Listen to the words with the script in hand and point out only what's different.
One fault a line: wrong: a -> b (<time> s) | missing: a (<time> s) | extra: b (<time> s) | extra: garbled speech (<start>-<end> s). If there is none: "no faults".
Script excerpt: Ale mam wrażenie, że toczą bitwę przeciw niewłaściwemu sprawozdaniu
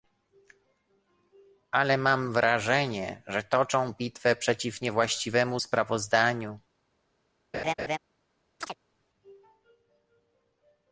no faults